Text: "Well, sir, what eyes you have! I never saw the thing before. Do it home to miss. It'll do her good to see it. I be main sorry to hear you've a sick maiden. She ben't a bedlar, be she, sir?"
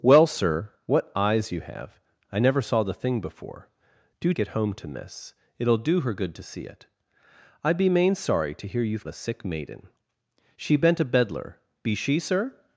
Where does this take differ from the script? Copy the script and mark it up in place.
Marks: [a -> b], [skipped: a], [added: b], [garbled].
"Well, sir, what eyes you have! I never saw the thing before. Do it home to miss. It'll do her good to see it. I be main sorry to hear you've a sick maiden. She ben't a bedlar, be she, sir?"